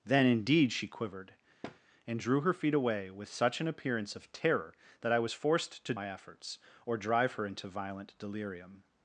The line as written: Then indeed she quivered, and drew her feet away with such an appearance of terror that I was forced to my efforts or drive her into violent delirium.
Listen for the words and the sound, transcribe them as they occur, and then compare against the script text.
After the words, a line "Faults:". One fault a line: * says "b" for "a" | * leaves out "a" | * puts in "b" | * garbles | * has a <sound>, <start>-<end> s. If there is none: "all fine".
Then indeed she quivered, and drew her feet away with such an appearance of terror that I was forced to my efforts or drive her into violent delirium.
Faults:
* has a thud, 1.6-1.8 s